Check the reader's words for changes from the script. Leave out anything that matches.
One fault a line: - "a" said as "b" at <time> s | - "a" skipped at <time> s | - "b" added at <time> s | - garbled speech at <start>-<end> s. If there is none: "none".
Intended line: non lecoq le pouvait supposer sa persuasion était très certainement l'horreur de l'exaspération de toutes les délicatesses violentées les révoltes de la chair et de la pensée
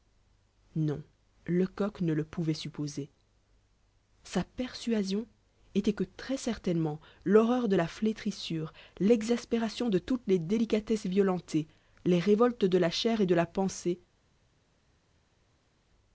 - "ne" added at 2.0 s
- "que" added at 5.9 s
- "la flétrissure" added at 7.7 s